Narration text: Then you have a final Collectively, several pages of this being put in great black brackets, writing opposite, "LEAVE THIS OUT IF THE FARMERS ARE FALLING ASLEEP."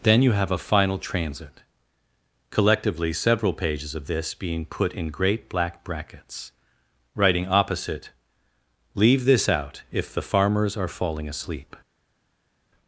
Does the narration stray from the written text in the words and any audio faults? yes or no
yes